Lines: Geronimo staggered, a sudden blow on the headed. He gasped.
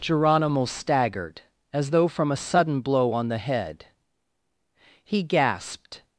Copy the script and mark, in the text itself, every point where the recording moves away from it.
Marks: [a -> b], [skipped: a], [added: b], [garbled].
Geronimo staggered, [added: as though from] a sudden blow on the [headed. -> head] He gasped.